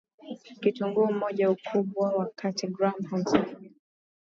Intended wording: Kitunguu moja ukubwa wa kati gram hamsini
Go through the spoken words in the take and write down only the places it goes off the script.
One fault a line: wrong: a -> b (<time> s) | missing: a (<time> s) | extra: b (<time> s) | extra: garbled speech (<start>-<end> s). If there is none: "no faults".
no faults